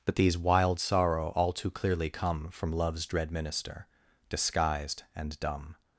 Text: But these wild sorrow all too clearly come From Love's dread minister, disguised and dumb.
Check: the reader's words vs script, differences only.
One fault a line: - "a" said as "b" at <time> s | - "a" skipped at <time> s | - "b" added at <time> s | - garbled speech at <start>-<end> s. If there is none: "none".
none